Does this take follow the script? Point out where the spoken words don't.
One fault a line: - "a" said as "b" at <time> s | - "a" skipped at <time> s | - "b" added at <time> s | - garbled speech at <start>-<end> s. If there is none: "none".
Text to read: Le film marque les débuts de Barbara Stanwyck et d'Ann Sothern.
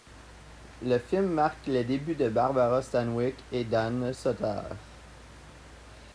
none